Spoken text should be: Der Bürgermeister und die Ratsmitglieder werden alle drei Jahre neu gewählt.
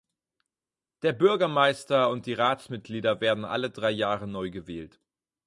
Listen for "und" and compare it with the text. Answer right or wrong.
right